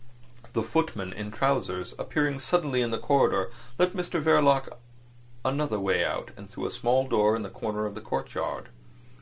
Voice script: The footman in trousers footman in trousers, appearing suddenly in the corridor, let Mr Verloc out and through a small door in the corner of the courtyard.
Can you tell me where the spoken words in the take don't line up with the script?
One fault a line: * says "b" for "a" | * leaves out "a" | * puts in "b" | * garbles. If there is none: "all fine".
* leaves out "footman in trousers"
* puts in "another way"